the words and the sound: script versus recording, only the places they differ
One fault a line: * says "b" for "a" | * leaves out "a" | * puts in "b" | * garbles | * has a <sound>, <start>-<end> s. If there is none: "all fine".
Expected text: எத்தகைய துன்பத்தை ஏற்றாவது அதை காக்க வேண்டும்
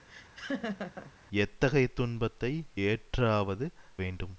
* has a laugh, 0.1-1.1 s
* leaves out "அதை காக்க"